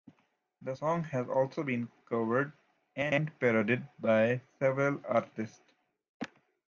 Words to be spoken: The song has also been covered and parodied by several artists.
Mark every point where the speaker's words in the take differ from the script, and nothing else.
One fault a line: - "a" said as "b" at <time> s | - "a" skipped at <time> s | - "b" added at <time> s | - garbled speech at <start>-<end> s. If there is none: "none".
none